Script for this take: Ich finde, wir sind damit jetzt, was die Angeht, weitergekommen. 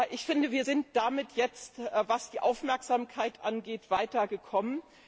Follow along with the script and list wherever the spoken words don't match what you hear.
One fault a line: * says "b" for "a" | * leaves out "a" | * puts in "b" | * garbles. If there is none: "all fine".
* puts in "Aufmerksamkeit"